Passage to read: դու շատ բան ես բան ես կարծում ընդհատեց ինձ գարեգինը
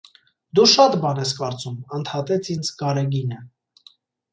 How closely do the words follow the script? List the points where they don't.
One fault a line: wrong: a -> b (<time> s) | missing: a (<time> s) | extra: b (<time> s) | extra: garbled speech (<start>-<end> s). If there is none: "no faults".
missing: բան ես (1.4 s)